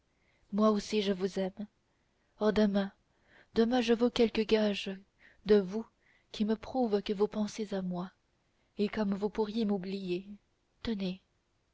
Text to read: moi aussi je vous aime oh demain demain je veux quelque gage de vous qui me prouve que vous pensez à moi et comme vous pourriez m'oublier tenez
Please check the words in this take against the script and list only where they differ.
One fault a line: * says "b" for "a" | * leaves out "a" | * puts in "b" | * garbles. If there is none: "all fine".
all fine